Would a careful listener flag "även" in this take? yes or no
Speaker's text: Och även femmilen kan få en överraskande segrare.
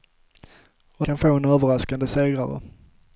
yes